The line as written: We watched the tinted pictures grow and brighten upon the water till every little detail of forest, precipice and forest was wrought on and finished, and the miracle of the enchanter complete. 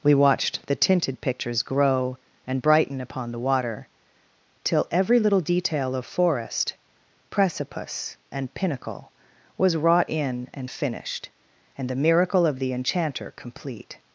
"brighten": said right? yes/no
yes